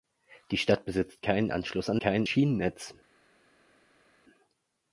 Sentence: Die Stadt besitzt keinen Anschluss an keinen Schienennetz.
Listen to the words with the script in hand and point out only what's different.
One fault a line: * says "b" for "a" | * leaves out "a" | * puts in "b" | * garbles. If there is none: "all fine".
all fine